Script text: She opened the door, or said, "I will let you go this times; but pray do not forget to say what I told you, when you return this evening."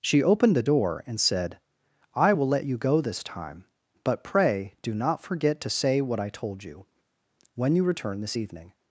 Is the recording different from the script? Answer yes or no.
yes